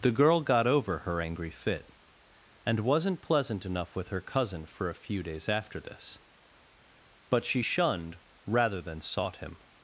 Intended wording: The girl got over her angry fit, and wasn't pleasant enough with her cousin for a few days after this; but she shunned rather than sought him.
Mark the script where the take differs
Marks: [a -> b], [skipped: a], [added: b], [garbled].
The girl got over her angry fit, and wasn't pleasant enough with her cousin for a few days after this; but she shunned rather than sought him.